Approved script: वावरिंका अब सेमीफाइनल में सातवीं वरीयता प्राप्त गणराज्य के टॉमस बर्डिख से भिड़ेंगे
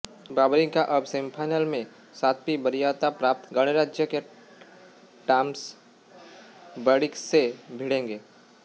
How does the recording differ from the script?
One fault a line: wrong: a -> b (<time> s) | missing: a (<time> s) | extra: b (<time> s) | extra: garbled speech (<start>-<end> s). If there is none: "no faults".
no faults